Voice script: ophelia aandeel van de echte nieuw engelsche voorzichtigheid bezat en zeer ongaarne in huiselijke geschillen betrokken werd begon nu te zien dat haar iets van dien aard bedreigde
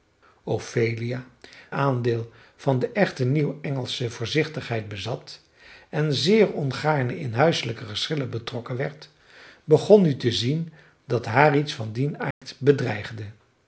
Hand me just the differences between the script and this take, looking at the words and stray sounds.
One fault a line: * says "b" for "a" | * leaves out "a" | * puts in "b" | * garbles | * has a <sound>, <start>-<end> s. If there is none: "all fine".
* has a dropout, 12.3-12.4 s